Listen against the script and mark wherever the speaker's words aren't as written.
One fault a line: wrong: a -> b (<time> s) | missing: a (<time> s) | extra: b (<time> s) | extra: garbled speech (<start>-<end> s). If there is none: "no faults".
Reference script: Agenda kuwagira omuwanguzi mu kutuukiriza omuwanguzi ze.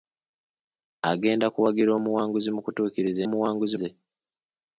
no faults